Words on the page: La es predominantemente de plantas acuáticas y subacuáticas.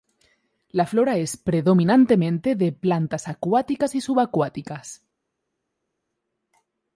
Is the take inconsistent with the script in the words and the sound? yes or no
yes